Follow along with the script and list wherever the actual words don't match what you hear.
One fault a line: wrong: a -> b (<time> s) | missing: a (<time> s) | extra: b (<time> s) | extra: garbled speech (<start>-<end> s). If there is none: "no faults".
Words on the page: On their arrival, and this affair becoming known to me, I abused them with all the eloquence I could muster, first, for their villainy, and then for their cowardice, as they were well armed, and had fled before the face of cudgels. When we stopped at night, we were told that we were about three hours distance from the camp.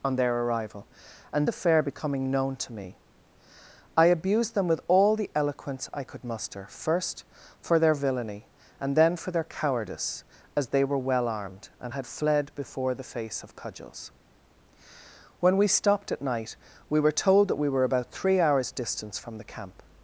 missing: this (1.5 s)